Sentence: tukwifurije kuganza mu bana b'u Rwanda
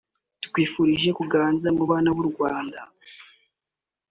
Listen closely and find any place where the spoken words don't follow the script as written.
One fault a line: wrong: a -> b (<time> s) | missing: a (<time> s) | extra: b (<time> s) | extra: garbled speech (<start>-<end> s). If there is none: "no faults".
no faults